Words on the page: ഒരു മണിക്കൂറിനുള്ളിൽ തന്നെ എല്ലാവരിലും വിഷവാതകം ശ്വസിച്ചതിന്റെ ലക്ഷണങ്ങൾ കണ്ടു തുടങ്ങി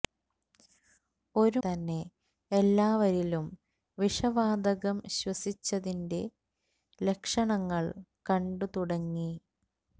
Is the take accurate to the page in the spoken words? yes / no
no